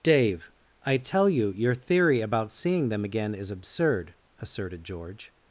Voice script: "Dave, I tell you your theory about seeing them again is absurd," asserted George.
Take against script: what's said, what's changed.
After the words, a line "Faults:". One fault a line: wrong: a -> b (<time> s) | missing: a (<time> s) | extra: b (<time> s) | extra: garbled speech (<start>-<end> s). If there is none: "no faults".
"Dave, I tell you your theory about seeing them again is absurd," asserted George.
Faults:
no faults